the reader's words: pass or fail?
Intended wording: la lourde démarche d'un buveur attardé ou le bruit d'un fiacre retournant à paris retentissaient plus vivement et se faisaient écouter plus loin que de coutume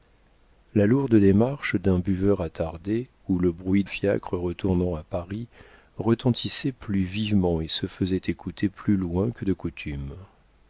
fail